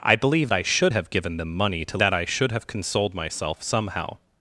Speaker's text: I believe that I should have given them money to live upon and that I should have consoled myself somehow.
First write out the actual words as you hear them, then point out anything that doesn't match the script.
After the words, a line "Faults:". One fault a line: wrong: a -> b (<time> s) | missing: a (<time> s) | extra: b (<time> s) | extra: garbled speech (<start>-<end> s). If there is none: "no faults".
I believe I should have given them money to that I should have consoled myself somehow.
Faults:
missing: that (0.5 s)
missing: live upon and (2.0 s)